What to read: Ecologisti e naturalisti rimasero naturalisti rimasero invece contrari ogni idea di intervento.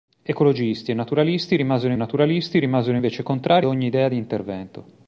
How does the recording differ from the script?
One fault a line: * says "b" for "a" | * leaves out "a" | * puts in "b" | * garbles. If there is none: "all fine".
all fine